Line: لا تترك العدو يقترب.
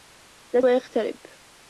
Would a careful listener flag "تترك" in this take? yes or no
yes